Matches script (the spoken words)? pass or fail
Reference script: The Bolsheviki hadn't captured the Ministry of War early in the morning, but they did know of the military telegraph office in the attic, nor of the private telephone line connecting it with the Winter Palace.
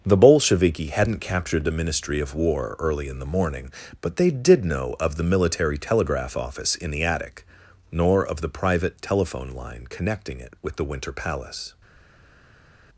pass